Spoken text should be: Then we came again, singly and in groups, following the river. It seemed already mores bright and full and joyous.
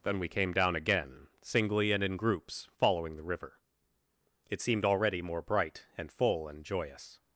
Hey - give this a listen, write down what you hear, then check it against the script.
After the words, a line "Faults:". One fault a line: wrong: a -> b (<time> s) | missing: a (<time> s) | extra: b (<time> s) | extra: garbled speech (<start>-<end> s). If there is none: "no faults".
Then we came down again, singly and in groups, following the river. It seemed already more bright and full and joyous.
Faults:
extra: down (0.5 s)
wrong: mores -> more (5.2 s)